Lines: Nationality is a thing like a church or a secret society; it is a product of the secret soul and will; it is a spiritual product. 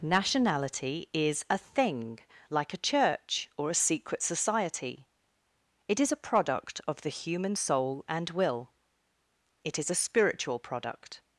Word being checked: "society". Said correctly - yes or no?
yes